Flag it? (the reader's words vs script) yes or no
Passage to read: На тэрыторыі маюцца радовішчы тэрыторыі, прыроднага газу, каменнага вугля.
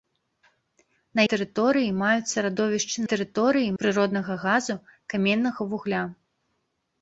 no